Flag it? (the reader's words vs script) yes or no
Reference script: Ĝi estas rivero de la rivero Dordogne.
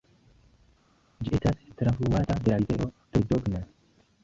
yes